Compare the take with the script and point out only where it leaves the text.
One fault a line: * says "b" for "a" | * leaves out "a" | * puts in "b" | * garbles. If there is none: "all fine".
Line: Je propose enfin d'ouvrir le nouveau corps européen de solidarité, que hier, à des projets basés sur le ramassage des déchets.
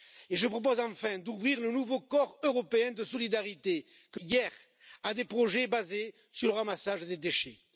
all fine